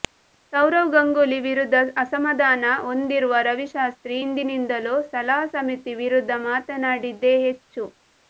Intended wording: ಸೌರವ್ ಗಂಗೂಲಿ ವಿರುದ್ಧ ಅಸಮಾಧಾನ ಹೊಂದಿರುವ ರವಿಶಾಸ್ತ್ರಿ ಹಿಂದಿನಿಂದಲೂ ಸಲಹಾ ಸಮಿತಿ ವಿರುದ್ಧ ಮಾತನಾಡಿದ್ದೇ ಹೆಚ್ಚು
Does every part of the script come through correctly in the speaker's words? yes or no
yes